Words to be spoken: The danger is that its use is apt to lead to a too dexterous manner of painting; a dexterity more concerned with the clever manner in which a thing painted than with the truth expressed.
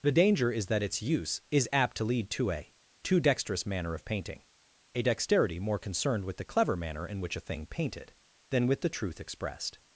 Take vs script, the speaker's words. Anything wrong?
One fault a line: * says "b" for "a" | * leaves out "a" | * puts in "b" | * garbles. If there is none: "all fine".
all fine